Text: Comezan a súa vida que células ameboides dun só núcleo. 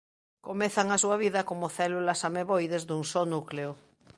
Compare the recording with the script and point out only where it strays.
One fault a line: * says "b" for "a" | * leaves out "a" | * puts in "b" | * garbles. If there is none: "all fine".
* says "como" for "que"